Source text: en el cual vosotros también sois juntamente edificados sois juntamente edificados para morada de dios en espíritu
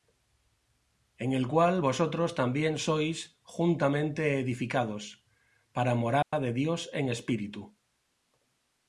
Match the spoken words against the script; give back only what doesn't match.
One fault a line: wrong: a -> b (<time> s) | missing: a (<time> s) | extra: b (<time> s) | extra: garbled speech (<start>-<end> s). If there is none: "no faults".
missing: sois juntamente edificados (5.2 s)